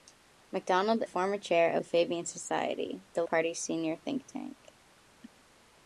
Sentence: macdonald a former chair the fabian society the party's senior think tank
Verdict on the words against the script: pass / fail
pass